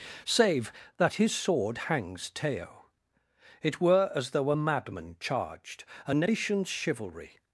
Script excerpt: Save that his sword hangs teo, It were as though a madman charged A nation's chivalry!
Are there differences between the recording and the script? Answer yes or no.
no